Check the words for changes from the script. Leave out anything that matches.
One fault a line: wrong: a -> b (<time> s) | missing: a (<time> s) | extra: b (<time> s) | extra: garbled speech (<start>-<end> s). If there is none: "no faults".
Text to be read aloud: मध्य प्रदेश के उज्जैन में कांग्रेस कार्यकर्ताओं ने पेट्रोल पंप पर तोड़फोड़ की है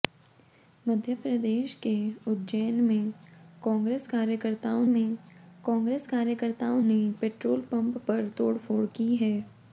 extra: में कांग्रेस कार्यकर्ताओं (4.9 s)